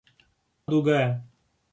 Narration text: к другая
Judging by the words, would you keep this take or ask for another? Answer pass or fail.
pass